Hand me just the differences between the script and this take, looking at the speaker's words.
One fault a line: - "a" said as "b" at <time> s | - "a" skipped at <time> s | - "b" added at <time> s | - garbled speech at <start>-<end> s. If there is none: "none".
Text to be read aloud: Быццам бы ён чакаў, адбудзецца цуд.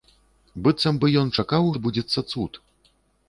none